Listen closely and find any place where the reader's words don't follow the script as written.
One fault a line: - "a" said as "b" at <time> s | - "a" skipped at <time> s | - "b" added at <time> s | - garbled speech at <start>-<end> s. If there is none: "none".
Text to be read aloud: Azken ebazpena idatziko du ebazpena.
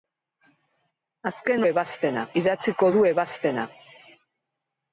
none